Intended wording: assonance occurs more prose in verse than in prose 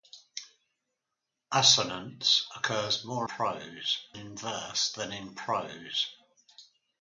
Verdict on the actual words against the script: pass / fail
pass